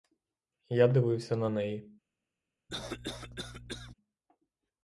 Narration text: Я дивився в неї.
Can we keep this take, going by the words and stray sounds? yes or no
no